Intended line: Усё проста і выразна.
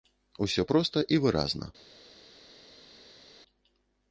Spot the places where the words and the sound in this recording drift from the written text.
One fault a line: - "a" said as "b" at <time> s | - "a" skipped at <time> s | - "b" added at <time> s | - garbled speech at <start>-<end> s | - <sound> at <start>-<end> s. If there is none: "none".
none